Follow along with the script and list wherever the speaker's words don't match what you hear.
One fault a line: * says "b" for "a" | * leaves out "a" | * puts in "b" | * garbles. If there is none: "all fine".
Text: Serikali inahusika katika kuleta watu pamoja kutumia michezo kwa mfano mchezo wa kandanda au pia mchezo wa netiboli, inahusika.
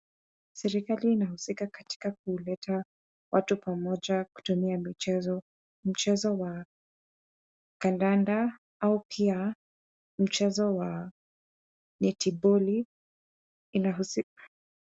* leaves out "kwa mfano"